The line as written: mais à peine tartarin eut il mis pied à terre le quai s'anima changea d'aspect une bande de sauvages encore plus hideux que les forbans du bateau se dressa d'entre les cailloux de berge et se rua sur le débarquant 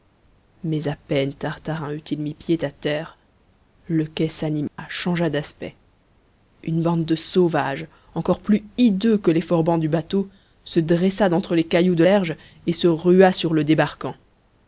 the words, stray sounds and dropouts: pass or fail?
fail